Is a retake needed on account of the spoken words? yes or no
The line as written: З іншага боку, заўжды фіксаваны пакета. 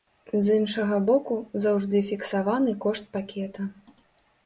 yes